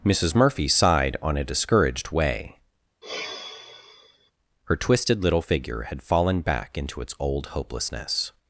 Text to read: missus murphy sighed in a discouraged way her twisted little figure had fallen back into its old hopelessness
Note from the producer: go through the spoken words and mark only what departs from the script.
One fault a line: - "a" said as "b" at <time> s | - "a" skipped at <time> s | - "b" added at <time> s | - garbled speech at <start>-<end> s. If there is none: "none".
- "in" said as "on" at 1.2 s